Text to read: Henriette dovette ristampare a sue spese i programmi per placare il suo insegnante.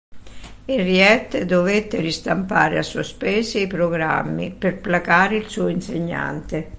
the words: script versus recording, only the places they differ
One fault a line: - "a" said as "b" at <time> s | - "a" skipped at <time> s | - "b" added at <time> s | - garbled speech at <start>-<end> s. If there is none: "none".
none